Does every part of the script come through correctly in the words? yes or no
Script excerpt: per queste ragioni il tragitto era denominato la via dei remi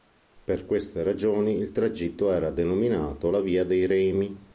yes